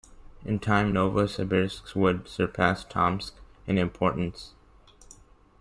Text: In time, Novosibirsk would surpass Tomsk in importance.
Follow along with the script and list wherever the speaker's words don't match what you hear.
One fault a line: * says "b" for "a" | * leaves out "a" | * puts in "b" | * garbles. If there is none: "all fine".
all fine